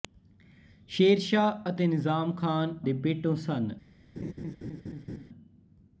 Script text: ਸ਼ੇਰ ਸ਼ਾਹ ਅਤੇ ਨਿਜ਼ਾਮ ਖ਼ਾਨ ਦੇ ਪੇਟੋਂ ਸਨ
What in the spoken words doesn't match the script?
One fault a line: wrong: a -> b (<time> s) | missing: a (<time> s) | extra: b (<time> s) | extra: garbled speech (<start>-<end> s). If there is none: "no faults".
no faults